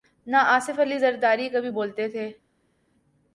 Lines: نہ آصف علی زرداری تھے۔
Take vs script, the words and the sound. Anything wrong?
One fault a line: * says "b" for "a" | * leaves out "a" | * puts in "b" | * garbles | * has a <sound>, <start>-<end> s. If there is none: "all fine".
* puts in "کبھی بولتے"